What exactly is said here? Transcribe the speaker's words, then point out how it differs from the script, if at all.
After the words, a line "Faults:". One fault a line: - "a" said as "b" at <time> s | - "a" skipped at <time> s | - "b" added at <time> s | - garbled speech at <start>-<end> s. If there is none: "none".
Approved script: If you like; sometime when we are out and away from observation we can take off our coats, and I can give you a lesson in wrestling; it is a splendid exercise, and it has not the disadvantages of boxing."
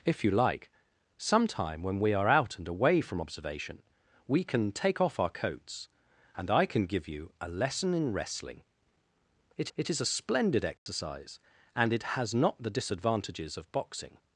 If you like; sometime when we are out and away from observation we can take off our coats, and I can give you a lesson in wrestling; it it is a splendid exercise, and it has not the disadvantages of boxing."
Faults:
- "it" added at 9.8 s